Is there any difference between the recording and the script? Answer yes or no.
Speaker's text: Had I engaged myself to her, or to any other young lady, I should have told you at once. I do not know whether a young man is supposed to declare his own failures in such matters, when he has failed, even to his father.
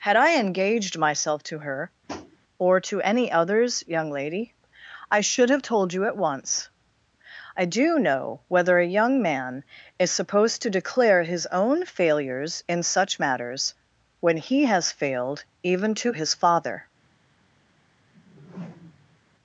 yes